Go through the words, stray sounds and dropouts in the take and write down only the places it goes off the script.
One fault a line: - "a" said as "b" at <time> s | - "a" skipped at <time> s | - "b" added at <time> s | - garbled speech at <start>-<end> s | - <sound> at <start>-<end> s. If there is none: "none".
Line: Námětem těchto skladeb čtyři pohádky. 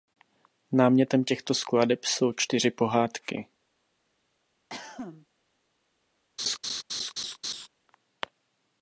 - "jsou" added at 2.0 s
- cough at 4.7-5.3 s
- laugh at 6.4-7.7 s